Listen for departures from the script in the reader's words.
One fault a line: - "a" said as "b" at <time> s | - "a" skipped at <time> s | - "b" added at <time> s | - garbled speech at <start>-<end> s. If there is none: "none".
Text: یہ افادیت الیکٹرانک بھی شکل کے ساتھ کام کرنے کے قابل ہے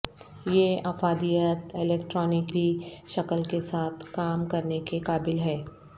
none